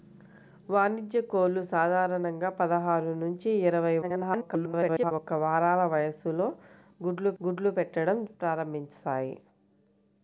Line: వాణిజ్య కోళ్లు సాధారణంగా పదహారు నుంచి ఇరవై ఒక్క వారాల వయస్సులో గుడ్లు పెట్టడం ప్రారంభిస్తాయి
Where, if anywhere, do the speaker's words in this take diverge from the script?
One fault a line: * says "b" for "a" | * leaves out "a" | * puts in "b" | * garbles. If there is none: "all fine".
* garbles
* puts in "గుడ్లు"